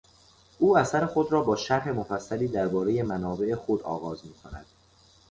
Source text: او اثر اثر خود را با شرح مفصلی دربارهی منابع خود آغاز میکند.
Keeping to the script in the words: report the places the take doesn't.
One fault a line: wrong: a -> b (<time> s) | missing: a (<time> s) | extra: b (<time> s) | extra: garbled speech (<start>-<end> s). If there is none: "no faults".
missing: اثر (1.1 s)